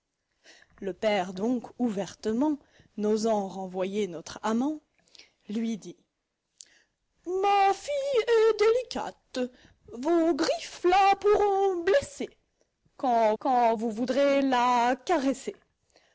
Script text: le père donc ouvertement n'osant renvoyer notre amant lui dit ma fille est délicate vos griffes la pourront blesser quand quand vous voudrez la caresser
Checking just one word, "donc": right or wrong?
right